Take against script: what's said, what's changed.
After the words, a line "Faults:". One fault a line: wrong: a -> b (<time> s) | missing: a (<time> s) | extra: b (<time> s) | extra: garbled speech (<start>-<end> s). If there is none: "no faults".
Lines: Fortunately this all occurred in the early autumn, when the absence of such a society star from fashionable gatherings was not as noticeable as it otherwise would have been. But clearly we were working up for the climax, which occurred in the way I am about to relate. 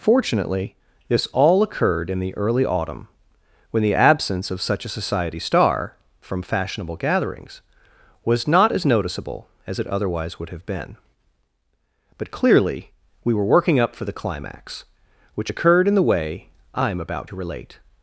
Fortunately this all occurred in the early autumn, when the absence of such a society star from fashionable gatherings was not as noticeable as it otherwise would have been. But clearly we were working up for the climax, which occurred in the way I am about to relate.
Faults:
no faults